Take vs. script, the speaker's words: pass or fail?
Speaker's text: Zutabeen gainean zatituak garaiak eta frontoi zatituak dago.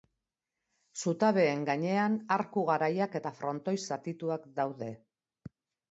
fail